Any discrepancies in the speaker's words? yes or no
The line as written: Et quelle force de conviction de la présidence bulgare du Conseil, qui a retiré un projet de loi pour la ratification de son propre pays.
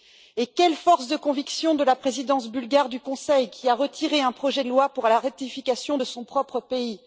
no